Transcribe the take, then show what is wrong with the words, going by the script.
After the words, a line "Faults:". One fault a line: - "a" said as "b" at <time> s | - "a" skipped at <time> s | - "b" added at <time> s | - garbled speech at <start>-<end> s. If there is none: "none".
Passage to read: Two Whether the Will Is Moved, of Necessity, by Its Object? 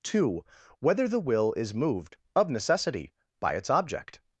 Two Whether the Will Is Moved, of Necessity, by Its Object?
Faults:
none